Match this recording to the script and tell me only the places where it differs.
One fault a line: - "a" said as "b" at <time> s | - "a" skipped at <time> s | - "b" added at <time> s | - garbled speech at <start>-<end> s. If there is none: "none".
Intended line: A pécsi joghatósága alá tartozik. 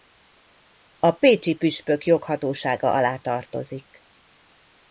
- "püspök" added at 1.5 s